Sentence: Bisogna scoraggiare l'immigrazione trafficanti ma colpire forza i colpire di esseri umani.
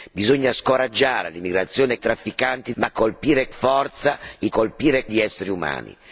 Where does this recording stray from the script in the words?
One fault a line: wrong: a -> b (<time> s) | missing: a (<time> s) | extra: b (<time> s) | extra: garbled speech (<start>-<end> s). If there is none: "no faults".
no faults